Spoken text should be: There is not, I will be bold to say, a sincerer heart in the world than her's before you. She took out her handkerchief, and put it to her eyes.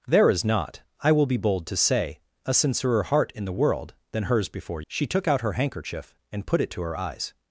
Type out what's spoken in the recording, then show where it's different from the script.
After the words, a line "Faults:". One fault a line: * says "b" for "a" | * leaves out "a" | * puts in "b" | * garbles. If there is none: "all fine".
There is not, I will be bold to say, a sincerer heart in the world than her's before. She took out her handkerchief, and put it to her eyes.
Faults:
* leaves out "you"